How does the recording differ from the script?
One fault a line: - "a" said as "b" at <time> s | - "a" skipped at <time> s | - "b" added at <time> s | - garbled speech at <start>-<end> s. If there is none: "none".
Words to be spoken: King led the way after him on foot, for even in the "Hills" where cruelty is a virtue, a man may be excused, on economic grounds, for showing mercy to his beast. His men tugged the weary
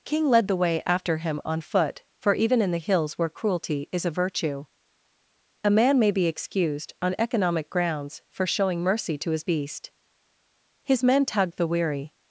none